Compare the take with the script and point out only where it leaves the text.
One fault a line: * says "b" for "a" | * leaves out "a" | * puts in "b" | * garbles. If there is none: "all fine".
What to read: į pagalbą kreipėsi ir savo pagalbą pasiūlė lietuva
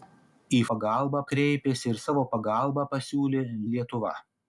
all fine